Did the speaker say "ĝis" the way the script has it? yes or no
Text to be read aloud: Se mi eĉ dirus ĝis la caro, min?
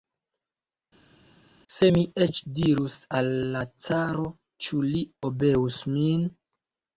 no